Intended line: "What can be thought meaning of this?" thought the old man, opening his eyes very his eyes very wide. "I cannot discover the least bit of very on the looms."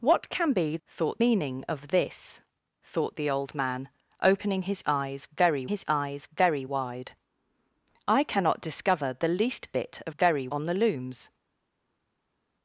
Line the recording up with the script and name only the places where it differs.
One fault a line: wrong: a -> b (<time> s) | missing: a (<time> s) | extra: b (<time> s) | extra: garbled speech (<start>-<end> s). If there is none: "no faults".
no faults